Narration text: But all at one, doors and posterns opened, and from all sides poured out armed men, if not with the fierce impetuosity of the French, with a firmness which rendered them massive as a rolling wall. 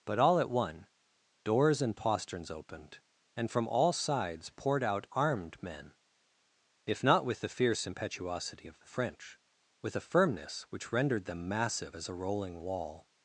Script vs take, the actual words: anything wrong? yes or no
no